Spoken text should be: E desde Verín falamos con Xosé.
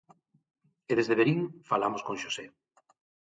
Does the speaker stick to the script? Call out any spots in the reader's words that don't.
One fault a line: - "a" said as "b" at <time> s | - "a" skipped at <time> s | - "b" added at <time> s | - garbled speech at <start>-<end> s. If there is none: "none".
none